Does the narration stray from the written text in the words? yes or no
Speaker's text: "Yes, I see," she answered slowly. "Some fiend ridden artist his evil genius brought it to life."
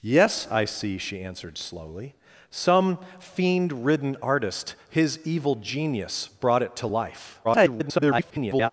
yes